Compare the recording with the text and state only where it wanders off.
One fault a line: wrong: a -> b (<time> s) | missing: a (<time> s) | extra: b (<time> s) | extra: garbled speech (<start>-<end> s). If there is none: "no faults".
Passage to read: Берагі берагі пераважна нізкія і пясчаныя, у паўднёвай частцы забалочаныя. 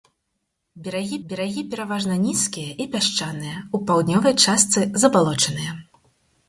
no faults